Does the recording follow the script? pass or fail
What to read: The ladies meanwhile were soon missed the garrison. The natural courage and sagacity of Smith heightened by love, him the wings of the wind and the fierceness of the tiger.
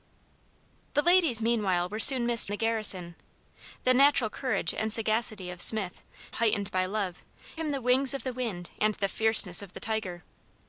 pass